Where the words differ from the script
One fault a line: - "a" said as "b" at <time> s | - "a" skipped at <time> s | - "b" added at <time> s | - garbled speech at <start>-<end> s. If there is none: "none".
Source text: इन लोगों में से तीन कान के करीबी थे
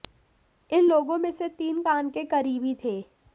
none